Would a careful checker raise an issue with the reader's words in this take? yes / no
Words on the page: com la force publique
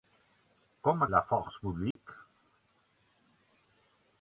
no